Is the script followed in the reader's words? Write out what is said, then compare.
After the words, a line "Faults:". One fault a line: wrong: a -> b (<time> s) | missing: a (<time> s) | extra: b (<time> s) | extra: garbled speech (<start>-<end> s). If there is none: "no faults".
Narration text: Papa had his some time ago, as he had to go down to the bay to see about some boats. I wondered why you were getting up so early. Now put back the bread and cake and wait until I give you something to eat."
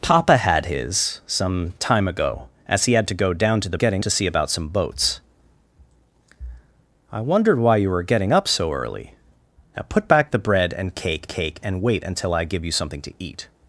Papa had his some time ago, as he had to go down to the getting to see about some boats. I wondered why you were getting up so early. Now put back the bread and cake cake and wait until I give you something to eat."
Faults:
wrong: bay -> getting (3.7 s)
extra: cake (11.3 s)